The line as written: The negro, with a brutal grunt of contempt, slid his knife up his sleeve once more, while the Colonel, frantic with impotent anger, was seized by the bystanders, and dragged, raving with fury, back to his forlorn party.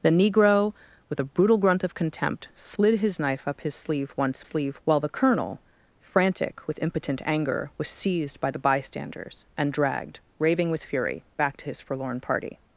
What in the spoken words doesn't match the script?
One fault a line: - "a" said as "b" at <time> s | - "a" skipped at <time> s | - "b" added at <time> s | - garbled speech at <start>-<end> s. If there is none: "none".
- "more" said as "sleeve" at 4.4 s